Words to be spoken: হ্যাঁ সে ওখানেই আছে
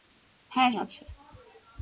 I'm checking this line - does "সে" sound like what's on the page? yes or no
no